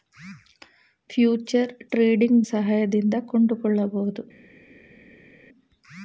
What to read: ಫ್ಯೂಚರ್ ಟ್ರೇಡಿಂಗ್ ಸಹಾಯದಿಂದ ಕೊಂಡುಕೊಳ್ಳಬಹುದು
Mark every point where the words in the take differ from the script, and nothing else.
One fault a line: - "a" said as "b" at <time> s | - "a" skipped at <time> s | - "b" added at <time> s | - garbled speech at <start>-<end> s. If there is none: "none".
none